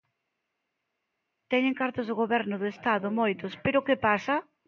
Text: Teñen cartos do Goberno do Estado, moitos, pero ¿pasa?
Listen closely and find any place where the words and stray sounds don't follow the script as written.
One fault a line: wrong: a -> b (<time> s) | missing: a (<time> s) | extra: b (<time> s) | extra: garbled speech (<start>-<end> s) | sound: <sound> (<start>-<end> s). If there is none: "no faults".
extra: que (3.8 s)